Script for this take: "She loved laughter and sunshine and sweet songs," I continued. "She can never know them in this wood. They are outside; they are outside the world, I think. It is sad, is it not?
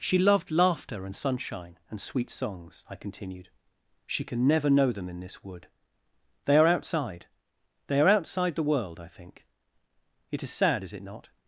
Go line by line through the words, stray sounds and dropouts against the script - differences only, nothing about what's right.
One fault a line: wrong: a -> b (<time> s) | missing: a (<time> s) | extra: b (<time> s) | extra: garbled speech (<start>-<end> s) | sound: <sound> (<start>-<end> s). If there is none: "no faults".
no faults